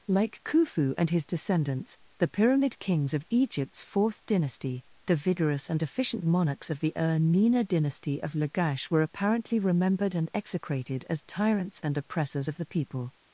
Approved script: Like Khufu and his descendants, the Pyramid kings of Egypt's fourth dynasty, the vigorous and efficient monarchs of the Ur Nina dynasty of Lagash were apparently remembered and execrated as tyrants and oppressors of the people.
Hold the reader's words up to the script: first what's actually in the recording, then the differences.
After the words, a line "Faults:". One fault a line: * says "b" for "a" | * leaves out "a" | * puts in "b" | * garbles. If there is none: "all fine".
Like Khufu and his descendants, the Pyramid kings of Egypt's fourth dynasty, the vigorous and efficient monarchs of the Ur Nina dynasty of Lagash were apparently remembered and execrated as tyrants and oppressors of the people.
Faults:
all fine